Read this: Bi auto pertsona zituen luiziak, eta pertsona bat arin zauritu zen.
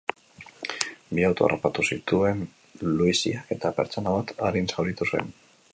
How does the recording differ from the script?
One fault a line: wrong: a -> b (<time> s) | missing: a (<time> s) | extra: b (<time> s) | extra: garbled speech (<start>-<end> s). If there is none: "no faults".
wrong: pertsona -> harrapatu (1.5 s)